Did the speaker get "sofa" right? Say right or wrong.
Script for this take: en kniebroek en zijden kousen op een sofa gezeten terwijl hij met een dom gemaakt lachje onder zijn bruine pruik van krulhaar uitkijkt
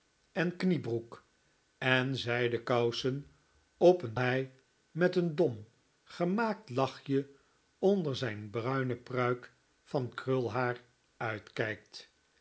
wrong